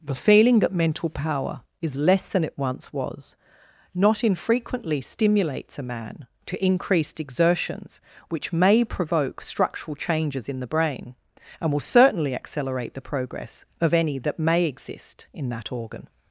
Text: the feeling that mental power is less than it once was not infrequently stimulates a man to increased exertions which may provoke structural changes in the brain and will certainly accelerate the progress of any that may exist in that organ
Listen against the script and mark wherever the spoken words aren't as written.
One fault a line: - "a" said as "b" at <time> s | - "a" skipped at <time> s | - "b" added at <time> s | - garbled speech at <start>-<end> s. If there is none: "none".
none